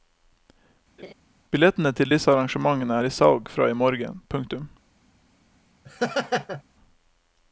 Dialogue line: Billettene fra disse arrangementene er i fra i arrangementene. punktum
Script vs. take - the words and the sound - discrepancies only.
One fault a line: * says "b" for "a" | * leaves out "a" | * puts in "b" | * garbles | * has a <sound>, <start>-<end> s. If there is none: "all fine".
* has a laugh, 1.0-1.1 s
* says "til" for "fra"
* puts in "salg"
* says "morgen" for "arrangementene"
* has a laugh, 5.8-6.6 s